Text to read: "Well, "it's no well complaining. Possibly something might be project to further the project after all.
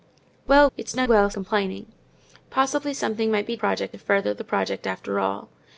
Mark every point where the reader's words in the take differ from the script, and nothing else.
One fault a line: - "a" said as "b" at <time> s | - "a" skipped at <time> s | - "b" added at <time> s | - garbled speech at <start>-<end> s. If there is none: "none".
none